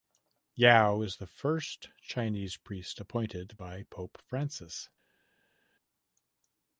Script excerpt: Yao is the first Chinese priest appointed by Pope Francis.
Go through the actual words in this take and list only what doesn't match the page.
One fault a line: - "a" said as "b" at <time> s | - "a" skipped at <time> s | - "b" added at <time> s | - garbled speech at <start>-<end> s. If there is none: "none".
none